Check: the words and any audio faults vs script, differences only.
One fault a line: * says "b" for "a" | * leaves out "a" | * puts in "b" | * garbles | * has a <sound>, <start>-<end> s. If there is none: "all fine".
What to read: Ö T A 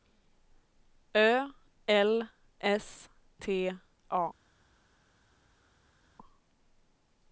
* puts in "L S"